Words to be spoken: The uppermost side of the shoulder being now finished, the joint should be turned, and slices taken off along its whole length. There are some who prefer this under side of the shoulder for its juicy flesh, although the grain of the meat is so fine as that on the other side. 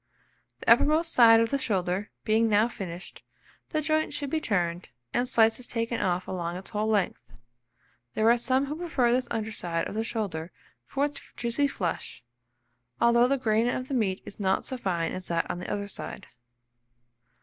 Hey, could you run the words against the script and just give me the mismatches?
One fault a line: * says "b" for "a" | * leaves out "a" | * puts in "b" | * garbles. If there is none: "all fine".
* puts in "not"